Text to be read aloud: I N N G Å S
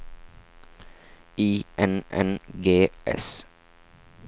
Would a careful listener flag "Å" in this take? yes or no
yes